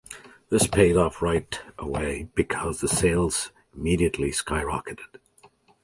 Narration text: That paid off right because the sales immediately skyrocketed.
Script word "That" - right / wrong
wrong